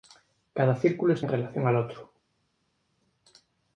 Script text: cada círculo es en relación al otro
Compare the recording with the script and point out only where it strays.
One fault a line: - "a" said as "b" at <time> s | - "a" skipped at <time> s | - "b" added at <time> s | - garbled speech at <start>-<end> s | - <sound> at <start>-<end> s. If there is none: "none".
none